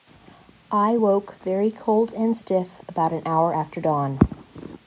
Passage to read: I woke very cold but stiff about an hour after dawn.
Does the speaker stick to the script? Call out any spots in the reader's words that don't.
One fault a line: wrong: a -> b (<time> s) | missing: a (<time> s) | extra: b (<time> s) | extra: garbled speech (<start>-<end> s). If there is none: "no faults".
wrong: but -> and (2.1 s)